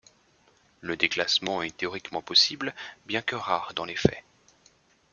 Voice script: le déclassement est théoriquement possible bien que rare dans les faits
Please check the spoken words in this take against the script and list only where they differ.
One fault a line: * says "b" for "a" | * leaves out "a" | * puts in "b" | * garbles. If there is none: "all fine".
all fine